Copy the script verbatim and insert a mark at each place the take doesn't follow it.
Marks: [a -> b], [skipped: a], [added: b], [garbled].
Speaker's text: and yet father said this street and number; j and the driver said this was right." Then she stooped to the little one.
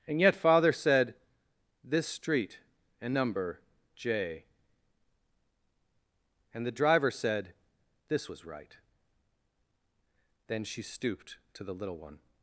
and yet father said this street and number; j and the driver said this was right." Then she stooped to the little one.